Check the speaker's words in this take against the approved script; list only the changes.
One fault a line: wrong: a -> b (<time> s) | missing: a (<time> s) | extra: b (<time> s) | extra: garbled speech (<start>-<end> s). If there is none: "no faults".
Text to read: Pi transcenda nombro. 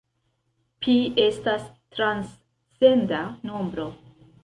extra: estas (1.2 s)